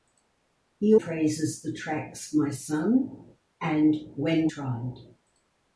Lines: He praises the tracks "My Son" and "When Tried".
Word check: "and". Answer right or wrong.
right